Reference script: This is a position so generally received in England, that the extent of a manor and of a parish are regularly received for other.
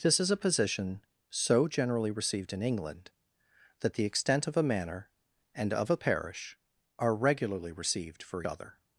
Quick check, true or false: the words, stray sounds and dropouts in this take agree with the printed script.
true